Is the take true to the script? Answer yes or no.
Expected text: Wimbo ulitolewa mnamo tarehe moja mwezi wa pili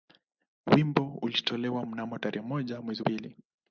no